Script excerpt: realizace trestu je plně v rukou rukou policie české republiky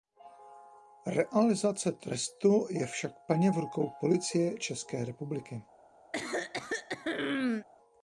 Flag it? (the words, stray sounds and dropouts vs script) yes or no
yes